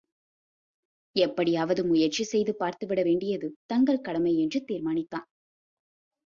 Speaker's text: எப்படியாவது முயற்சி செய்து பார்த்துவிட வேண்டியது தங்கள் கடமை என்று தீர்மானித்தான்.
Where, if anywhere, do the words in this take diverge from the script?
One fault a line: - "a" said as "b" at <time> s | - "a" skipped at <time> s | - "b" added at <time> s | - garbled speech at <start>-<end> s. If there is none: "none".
none